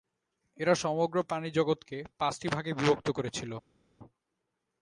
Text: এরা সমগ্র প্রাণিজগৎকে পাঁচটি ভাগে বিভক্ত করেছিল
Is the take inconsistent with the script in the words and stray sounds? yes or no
no